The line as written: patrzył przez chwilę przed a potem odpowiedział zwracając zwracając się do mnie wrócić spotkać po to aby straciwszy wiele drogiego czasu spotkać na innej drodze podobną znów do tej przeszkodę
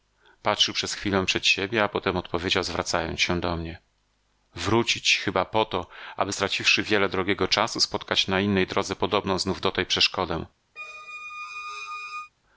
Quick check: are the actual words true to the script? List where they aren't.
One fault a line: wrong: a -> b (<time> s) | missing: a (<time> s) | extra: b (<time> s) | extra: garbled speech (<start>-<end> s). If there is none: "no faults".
extra: siebie (1.5 s)
missing: zwracając (3.2 s)
wrong: spotkać -> chyba (5.2 s)